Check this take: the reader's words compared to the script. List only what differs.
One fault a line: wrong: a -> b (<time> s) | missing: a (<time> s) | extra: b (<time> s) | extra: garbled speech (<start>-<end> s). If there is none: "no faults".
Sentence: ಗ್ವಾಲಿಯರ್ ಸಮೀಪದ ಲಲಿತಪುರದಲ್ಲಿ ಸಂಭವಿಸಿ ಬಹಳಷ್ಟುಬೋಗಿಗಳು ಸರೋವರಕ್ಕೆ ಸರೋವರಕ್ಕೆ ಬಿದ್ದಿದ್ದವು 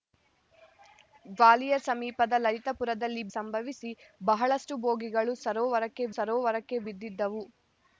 no faults